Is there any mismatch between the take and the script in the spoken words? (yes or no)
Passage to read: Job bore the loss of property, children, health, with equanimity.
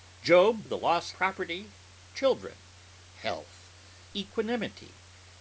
yes